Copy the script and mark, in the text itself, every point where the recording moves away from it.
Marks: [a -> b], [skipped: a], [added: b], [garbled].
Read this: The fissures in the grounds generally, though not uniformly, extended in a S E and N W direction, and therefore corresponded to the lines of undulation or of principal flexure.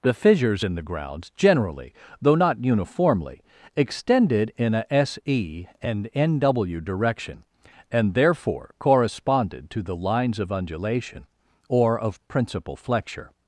The fissures in the grounds generally, though not uniformly, extended in a S E and N W direction, and therefore corresponded to the lines of undulation or of principal flexure.